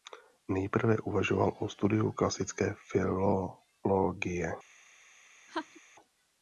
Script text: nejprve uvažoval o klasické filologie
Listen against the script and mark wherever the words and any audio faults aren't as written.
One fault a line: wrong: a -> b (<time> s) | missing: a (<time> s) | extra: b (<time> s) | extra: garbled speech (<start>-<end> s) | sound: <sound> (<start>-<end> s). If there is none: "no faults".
extra: studiu (1.7 s)
sound: laugh (5.5-5.8 s)